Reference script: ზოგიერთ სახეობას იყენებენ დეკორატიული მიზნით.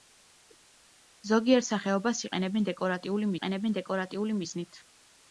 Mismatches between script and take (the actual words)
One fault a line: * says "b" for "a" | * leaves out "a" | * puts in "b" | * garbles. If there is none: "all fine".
* puts in "იყენებენ დეკორატიული"